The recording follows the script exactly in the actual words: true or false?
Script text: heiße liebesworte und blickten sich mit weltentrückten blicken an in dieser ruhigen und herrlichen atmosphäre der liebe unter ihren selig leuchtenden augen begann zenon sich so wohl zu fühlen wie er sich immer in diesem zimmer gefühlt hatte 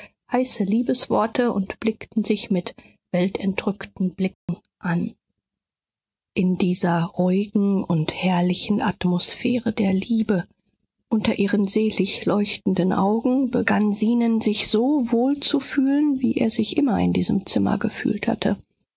true